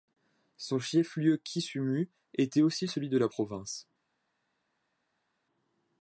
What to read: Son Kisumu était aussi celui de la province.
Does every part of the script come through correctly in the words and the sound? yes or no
no